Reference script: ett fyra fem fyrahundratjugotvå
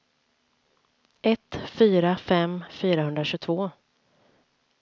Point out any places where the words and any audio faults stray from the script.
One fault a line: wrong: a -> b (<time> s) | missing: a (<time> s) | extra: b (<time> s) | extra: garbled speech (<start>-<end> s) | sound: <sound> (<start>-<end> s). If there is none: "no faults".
no faults